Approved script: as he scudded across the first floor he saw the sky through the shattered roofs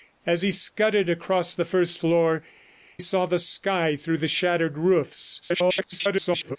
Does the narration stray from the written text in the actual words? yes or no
yes